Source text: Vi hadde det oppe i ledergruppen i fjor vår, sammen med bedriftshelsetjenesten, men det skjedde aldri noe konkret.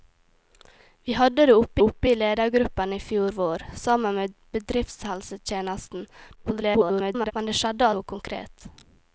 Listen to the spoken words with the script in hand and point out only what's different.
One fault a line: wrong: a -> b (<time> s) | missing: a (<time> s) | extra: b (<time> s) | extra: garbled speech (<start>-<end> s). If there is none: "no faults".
extra: oppe (1.8 s)
extra: garbled speech (6.4-7.3 s)
missing: aldri (7.9 s)